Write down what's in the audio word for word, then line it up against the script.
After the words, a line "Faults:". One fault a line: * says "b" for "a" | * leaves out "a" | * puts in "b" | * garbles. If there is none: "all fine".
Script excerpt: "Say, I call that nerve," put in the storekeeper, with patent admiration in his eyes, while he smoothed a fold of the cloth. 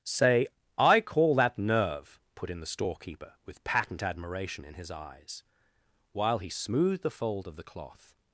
"Say, I call that nerve," put in the storekeeper, with patent admiration in his eyes, while he smoothed the fold of the cloth.
Faults:
* says "the" for "a"